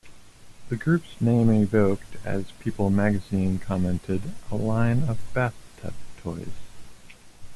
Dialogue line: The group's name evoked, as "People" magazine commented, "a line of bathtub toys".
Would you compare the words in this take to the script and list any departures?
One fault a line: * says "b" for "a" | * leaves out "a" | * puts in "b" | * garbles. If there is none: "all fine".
all fine